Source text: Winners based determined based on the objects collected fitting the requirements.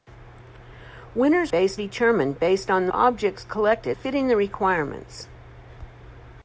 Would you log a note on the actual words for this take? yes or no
no